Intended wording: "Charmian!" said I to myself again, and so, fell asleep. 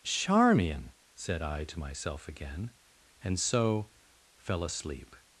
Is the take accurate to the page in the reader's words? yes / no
yes